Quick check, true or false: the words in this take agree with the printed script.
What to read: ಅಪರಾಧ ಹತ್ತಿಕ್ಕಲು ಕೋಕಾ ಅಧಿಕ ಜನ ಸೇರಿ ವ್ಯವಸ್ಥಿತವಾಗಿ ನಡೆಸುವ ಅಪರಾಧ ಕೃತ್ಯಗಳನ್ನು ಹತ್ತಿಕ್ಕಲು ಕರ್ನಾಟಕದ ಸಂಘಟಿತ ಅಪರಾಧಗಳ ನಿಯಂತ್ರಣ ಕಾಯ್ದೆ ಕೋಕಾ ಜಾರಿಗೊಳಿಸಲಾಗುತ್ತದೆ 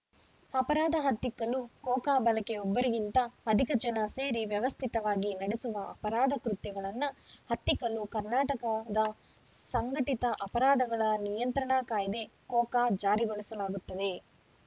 false